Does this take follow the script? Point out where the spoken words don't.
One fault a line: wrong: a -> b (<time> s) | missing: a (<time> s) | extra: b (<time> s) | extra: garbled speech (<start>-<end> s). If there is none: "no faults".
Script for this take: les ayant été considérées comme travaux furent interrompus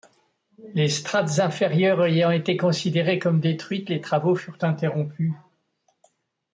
extra: strates inférieures (0.9 s)
extra: détruites les (3.4 s)